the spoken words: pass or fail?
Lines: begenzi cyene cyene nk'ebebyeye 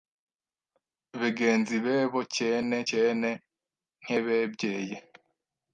fail